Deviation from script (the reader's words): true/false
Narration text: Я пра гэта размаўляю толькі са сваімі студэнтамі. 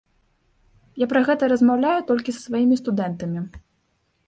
false